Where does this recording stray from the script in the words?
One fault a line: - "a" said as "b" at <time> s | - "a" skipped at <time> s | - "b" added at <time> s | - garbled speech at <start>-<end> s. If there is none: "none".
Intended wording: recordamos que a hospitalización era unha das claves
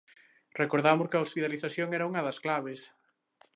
none